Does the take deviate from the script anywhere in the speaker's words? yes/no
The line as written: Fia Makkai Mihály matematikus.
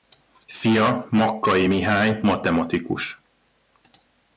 no